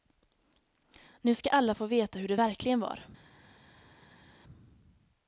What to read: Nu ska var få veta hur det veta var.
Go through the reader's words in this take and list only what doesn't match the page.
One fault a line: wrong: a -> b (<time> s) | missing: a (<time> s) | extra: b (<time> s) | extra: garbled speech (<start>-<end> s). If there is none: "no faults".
wrong: var -> alla (1.5 s)
wrong: veta -> verkligen (2.3 s)